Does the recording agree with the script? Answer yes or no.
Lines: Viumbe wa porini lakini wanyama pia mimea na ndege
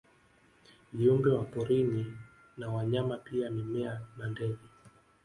no